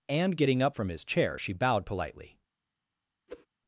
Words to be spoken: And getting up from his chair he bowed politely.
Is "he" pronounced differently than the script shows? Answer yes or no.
yes